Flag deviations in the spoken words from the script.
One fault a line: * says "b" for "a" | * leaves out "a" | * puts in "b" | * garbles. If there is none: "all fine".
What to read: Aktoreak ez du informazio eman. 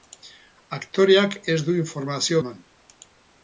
all fine